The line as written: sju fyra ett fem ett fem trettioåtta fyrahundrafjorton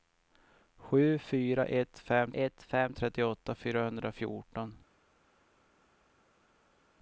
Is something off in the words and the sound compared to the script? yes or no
no